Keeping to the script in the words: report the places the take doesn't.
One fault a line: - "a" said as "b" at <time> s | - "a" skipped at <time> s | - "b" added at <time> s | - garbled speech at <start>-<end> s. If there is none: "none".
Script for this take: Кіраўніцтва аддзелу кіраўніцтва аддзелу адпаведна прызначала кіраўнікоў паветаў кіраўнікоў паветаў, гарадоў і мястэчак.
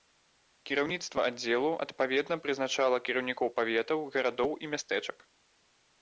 - "кіраўніцтва аддзелу" skipped at 1.7 s
- "кіраўнікоў паветаў" skipped at 4.0 s